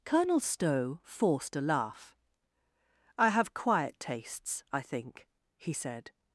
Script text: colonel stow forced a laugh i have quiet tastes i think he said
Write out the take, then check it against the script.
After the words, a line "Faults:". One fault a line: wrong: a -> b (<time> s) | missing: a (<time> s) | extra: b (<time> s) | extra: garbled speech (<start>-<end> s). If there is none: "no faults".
colonel stow forced a laugh i have quiet tastes i think he said
Faults:
no faults